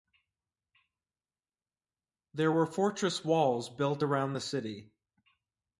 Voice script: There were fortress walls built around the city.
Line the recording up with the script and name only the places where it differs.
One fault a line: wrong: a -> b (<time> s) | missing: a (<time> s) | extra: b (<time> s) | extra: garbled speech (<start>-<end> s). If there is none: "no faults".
no faults